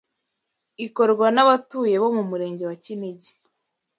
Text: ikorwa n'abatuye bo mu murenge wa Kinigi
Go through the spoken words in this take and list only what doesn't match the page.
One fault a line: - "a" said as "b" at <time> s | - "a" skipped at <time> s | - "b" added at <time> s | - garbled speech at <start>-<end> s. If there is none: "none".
none